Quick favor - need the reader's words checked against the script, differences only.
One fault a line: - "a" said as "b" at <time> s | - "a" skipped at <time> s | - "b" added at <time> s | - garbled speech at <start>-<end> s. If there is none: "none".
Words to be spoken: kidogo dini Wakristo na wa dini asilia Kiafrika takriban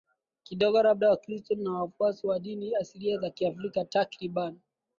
- "dini" said as "labda" at 0.8 s
- "wafuasi" added at 1.7 s
- "za" added at 3.2 s